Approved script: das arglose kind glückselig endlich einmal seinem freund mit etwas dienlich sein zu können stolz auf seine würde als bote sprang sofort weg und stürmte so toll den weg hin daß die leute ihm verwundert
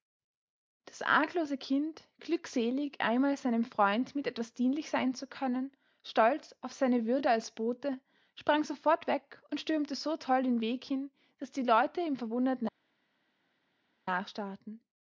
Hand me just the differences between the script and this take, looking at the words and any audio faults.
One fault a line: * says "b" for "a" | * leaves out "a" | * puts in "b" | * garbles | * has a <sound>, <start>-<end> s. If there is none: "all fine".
* leaves out "endlich"